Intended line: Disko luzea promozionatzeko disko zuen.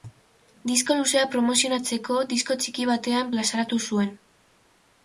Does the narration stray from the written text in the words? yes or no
yes